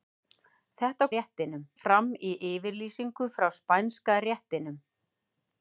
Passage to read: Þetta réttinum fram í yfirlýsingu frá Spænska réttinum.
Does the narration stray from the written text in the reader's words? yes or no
no